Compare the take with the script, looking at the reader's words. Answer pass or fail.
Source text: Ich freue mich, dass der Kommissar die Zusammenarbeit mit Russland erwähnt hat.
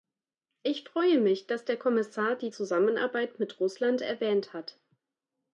pass